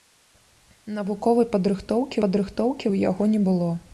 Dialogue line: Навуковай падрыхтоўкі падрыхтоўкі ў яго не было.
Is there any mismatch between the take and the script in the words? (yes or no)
no